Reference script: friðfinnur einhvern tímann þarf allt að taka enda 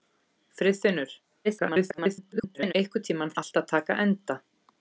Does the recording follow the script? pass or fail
fail